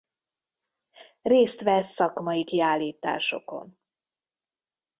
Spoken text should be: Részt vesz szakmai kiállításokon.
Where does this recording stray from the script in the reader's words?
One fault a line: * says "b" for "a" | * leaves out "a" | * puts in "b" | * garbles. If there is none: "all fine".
all fine